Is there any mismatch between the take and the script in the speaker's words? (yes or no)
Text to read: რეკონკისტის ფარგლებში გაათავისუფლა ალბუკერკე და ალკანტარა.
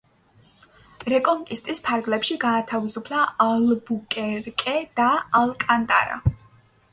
no